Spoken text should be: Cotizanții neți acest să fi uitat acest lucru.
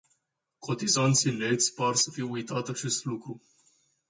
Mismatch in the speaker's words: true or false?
true